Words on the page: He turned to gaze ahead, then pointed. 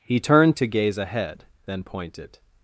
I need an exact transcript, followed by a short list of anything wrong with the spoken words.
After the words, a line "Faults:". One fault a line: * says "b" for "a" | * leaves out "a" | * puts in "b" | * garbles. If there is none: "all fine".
He turned to gaze ahead, then pointed.
Faults:
all fine